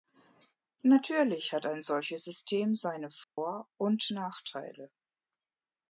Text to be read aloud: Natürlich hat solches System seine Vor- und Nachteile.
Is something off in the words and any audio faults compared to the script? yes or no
yes